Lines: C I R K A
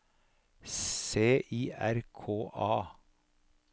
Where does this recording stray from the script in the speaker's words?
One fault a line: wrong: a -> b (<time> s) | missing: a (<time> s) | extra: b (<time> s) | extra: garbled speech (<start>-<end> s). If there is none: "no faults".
no faults